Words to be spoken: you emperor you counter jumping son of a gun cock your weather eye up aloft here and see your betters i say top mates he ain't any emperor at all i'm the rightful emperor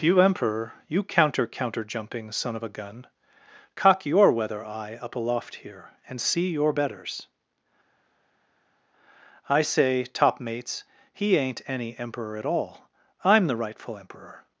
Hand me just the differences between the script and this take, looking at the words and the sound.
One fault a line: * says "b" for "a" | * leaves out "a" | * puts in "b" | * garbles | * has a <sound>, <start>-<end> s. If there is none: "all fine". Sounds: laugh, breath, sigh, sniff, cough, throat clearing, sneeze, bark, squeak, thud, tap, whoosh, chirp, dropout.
* puts in "counter"